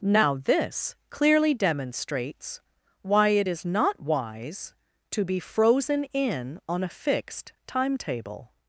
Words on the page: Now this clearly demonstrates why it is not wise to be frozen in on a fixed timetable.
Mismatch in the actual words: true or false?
false